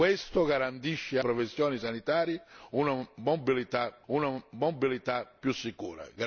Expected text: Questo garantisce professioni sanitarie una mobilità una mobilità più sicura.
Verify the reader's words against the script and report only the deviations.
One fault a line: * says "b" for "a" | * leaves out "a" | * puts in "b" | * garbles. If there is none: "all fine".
all fine